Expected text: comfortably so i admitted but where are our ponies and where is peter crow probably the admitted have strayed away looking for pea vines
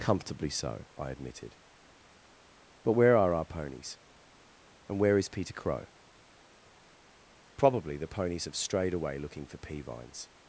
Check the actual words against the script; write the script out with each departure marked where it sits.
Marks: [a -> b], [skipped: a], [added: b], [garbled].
comfortably so i admitted but where are our ponies and where is peter crow probably the [admitted -> ponies] have strayed away looking for pea vines